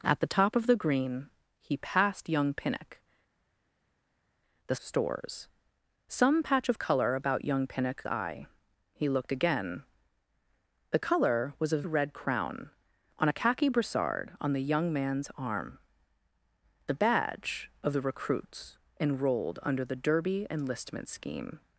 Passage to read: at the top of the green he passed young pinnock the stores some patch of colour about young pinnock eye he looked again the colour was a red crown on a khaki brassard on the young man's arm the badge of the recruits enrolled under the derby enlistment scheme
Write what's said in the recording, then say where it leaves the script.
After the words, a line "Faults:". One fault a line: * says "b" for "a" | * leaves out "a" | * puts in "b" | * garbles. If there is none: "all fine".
at the top of the green he passed young pinnock the stores some patch of colour about young pinnock eye he looked again the colour was a red crown on a khaki brassard on the young man's arm the badge of the recruits enrolled under the derby enlistment scheme
Faults:
all fine